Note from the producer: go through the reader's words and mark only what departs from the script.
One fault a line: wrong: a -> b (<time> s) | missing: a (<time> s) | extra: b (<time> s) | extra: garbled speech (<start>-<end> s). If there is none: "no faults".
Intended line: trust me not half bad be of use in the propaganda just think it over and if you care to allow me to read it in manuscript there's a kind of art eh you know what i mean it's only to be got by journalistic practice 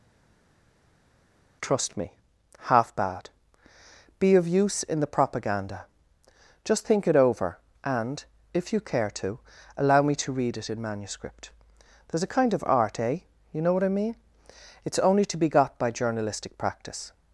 missing: not (2.1 s)